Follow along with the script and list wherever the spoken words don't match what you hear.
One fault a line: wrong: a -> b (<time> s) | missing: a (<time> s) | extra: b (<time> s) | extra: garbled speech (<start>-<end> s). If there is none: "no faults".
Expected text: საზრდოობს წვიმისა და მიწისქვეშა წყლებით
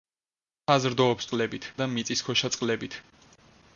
wrong: წვიმისა -> წყლებით (1.3 s)